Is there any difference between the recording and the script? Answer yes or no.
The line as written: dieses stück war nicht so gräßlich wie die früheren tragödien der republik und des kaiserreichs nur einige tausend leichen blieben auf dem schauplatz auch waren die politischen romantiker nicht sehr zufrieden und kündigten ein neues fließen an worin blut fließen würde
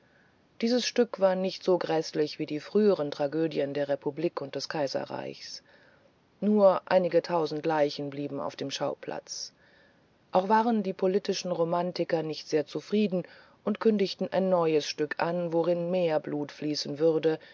yes